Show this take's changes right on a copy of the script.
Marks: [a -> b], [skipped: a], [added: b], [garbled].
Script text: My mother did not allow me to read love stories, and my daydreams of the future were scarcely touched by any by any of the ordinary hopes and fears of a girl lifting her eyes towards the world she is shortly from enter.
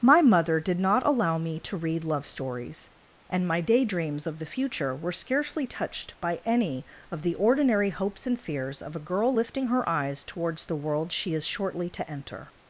My mother did not allow me to read love stories, and my daydreams of the future were scarcely touched by any [skipped: by any] of the ordinary hopes and fears of a girl lifting her eyes towards the world she is shortly [from -> to] enter.